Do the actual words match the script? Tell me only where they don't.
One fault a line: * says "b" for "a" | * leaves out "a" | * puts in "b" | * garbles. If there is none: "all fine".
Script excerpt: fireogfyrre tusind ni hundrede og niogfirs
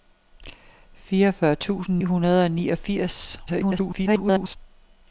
* leaves out "ni"
* garbles